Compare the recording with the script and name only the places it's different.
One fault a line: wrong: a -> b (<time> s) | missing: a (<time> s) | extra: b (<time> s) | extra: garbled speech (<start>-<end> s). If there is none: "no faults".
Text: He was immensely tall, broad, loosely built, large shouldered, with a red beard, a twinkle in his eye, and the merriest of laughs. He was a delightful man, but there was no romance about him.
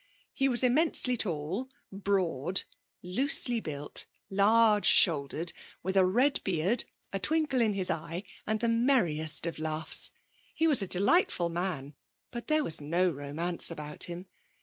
no faults